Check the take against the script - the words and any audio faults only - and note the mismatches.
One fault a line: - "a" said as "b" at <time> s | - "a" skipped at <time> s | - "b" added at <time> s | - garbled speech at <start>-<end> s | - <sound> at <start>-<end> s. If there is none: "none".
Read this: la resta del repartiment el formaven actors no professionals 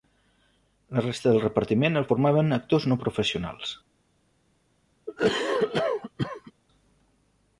- cough at 5.1-6.5 s